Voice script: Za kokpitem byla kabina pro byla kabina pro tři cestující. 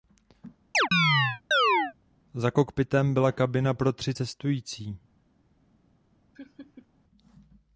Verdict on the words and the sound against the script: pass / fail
fail